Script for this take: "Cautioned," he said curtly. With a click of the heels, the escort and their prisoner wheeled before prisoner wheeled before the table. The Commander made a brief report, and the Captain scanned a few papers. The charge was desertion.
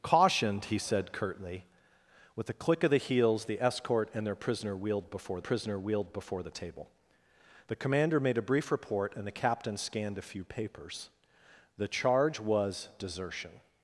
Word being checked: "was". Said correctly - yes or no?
yes